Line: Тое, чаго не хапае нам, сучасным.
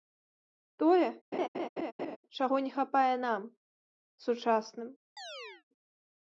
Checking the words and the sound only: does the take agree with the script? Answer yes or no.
no